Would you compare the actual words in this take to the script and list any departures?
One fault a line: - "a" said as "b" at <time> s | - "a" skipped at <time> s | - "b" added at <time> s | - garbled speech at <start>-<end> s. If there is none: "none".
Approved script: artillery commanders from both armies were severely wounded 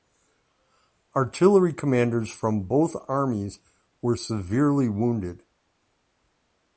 none